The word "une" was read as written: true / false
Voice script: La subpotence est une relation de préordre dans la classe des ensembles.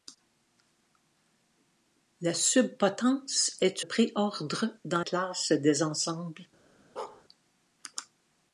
false